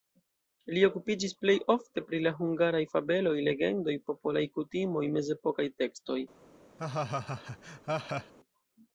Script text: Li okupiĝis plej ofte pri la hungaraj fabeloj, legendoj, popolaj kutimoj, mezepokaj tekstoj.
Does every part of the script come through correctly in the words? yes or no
yes